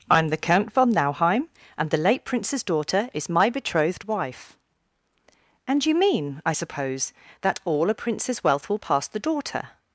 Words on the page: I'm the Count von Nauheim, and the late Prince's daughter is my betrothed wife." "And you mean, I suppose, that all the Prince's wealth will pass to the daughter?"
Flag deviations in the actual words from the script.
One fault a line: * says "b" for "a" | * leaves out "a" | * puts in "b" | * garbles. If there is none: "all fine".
* says "a" for "the"
* leaves out "to"